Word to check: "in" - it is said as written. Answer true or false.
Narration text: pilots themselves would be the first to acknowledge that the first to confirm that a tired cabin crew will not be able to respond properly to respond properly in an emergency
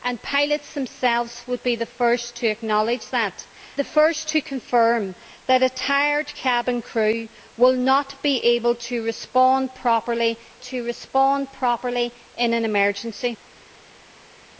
true